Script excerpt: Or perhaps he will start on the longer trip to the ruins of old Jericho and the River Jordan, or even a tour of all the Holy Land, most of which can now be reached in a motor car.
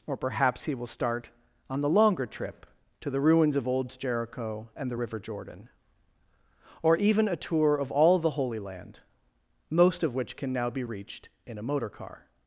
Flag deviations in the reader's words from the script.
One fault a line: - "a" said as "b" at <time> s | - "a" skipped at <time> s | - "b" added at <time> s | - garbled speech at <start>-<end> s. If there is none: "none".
none